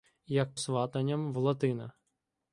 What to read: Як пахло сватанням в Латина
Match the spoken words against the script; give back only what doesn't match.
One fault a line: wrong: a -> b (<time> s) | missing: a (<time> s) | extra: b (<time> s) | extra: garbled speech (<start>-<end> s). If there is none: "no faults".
missing: пахло (0.6 s)